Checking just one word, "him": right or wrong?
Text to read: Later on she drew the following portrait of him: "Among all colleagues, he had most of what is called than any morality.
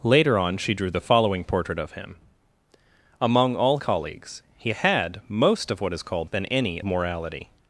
right